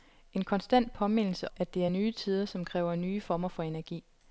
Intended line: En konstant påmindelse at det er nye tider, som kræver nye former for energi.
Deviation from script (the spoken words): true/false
false